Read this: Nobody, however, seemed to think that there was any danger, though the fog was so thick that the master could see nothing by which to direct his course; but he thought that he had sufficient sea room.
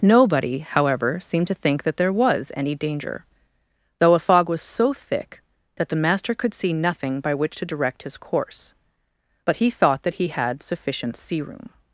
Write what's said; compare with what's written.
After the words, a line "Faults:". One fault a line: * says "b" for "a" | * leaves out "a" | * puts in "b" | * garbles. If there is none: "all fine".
Nobody, however, seemed to think that there was any danger, though a fog was so thick that the master could see nothing by which to direct his course; but he thought that he had sufficient sea room.
Faults:
* says "a" for "the"